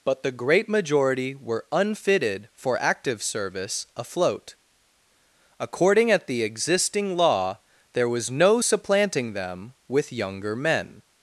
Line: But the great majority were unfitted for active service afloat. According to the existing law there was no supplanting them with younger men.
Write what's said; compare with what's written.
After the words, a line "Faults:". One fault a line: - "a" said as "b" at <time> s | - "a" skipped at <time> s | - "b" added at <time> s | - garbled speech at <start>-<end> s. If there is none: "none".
But the great majority were unfitted for active service afloat. According at the existing law there was no supplanting them with younger men.
Faults:
- "to" said as "at" at 6.1 s